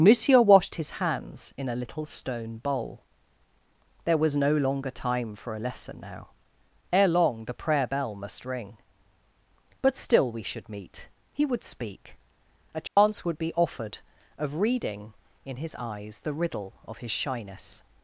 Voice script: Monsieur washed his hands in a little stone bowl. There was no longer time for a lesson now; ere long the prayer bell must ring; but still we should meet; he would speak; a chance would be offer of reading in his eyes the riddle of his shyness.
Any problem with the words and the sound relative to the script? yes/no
yes